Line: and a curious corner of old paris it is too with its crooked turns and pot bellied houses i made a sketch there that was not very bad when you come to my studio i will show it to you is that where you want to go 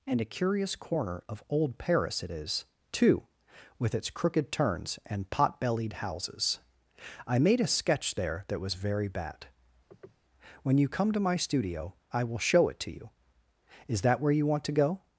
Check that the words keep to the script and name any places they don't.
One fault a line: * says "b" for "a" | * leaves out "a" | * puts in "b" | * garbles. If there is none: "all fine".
* leaves out "not"